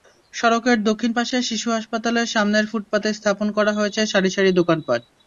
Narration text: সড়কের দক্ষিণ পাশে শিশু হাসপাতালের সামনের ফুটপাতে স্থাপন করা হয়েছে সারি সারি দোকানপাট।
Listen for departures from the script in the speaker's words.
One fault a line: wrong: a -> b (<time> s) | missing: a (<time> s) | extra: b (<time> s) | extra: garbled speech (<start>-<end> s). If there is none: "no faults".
no faults